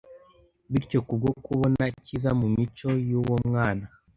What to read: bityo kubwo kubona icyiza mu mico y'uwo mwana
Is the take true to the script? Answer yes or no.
yes